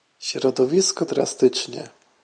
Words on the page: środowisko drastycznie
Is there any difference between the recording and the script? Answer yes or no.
no